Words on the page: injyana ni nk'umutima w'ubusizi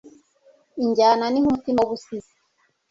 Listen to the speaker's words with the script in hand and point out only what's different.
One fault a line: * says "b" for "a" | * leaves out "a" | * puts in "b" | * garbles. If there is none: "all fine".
all fine